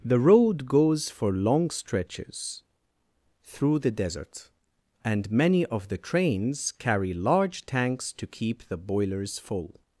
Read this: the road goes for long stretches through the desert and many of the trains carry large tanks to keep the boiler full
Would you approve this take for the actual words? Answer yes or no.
no